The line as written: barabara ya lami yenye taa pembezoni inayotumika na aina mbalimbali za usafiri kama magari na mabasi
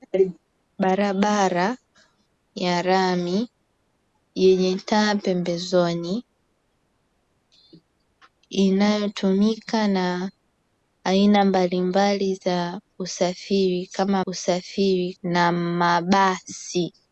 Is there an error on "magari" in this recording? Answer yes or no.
yes